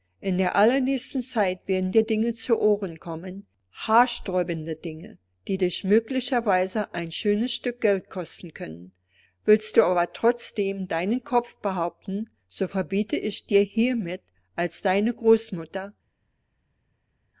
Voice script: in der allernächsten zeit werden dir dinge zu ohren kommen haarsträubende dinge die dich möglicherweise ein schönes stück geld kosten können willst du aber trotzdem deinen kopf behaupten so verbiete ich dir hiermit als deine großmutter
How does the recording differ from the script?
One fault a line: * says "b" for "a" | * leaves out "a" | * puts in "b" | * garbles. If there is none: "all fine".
all fine